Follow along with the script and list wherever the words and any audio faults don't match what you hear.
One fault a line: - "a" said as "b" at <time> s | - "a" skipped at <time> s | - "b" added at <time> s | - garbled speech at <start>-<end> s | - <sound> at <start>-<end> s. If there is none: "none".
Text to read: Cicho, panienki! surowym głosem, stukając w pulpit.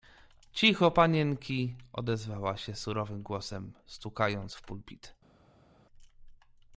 - "odezwała się" added at 1.9 s